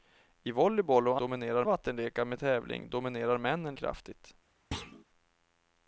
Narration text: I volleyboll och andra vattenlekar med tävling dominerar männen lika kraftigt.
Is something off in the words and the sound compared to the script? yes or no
yes